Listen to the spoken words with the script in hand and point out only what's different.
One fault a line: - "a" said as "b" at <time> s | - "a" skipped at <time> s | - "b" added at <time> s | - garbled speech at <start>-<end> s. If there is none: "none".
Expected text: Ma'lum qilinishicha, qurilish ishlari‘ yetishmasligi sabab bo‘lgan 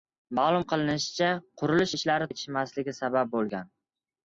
none